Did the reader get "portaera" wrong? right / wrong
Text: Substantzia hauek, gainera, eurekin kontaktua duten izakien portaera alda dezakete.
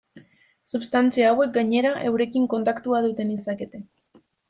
wrong